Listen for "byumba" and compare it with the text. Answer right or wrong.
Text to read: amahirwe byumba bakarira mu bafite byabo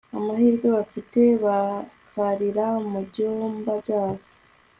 wrong